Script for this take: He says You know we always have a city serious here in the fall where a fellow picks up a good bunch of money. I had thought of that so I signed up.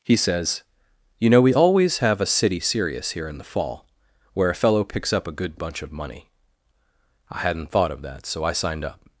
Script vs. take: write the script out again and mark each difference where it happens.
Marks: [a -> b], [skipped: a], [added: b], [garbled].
He says You know we always have a city serious here in the fall where a fellow picks up a good bunch of money. I [had -> hadn't] thought of that so I signed up.